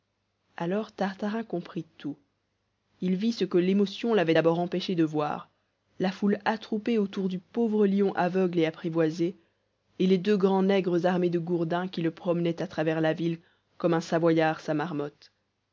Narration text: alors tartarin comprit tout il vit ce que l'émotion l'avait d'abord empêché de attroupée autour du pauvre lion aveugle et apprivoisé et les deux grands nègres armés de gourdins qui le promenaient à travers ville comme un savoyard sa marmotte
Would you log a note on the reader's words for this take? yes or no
yes